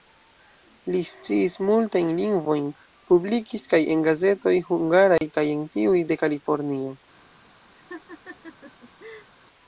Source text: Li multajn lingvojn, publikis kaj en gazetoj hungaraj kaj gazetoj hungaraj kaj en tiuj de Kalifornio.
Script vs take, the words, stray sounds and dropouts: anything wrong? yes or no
yes